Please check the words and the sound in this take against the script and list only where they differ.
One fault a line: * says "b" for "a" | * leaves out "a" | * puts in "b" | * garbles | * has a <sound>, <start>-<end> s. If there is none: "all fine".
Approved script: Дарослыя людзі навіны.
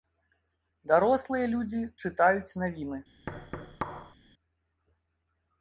* puts in "чытаюць"
* has a thud, 3.3-4.2 s